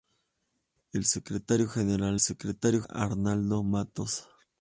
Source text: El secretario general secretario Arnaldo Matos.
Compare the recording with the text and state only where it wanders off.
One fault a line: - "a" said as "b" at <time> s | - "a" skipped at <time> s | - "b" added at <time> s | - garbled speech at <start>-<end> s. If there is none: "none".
none